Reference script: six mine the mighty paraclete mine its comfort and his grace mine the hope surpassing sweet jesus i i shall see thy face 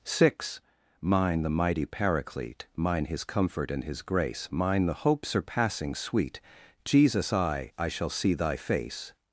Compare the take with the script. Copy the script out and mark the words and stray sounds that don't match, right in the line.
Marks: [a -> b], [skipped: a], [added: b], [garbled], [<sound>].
six mine the mighty paraclete mine [its -> his] comfort and his grace mine the hope surpassing sweet jesus i i shall see thy face